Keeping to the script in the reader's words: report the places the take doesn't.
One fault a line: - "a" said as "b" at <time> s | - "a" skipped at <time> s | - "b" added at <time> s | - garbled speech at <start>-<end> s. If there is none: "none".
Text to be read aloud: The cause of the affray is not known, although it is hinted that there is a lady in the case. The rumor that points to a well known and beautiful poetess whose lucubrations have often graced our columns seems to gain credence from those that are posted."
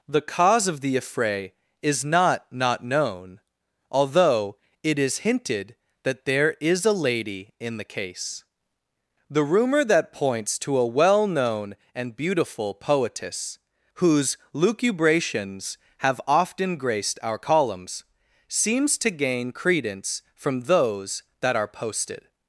- "not" added at 2.5 s